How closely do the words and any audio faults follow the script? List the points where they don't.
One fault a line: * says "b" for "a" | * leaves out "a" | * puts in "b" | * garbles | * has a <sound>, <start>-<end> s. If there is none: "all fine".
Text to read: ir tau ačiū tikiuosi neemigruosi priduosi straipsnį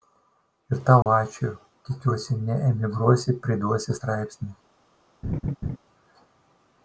* has a dropout, 1.0-1.1 s
* has a laugh, 5.2-5.8 s